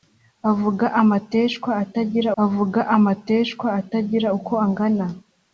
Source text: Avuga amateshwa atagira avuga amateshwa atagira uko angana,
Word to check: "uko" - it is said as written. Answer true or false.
true